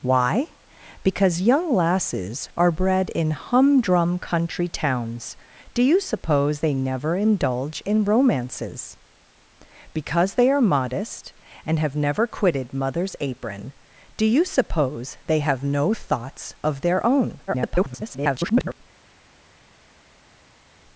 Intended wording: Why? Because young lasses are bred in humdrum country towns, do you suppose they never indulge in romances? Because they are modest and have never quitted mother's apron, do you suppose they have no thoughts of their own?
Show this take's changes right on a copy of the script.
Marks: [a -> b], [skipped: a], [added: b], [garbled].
Why? Because young lasses are bred in humdrum country towns, do you suppose they never indulge in romances? Because they are modest and have never quitted mother's apron, do you suppose they have no thoughts of their own? [garbled]